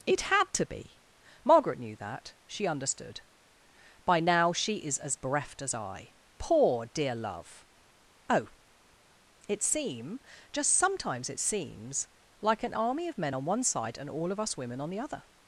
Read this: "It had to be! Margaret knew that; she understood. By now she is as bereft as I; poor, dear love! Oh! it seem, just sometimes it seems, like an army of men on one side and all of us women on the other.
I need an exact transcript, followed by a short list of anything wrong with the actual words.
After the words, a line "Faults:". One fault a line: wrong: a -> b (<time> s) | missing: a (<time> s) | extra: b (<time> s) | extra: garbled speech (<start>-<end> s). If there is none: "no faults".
"It had to be! Margaret knew that; she understood. By now she is as bereft as I; poor, dear love! Oh! it seem, just sometimes it seems, like an army of men on one side and all of us women on the other.
Faults:
no faults